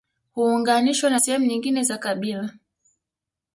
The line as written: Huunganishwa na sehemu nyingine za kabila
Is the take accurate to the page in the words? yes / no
yes